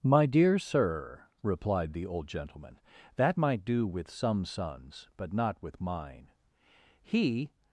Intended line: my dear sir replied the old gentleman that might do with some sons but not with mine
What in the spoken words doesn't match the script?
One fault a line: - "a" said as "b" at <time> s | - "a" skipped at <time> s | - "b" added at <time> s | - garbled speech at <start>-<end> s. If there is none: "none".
- "he" added at 7.0 s